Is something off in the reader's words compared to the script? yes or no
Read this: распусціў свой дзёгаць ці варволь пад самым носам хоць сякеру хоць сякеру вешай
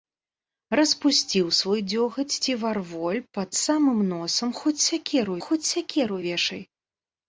no